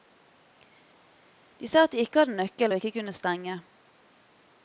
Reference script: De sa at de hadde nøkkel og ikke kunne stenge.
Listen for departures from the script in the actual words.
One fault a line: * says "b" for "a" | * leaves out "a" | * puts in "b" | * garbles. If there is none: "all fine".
* puts in "ikke"